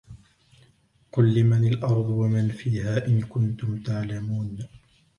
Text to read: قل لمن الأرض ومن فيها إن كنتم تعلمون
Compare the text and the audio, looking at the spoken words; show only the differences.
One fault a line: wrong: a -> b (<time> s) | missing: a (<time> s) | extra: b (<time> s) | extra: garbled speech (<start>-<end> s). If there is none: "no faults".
no faults